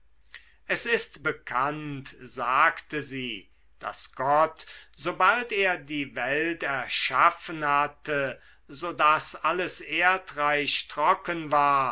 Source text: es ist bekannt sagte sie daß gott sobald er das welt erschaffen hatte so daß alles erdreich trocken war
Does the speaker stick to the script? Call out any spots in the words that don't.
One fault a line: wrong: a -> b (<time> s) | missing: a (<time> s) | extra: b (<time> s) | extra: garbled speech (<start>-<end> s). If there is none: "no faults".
wrong: das -> die (5.8 s)